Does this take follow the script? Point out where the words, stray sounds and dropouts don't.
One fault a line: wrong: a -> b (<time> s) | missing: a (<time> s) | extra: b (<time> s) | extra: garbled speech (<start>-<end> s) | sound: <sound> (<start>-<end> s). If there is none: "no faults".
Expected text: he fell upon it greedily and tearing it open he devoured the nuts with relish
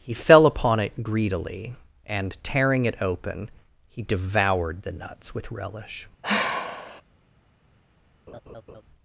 sound: sigh (6.2-7.0 s)
sound: laugh (8.3-8.8 s)